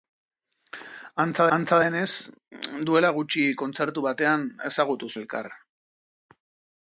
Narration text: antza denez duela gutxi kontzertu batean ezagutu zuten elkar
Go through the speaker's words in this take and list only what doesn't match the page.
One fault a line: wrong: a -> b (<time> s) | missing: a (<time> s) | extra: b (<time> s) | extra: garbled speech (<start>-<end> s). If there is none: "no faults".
extra: antza (1.6 s)
missing: zuten (5.1 s)